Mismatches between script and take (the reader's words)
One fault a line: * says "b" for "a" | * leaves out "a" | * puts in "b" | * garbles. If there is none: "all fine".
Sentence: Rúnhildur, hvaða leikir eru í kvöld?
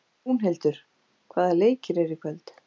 all fine